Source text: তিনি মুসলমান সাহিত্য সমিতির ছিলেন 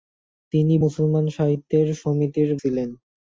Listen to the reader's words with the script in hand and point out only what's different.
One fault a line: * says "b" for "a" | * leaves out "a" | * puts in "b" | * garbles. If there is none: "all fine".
all fine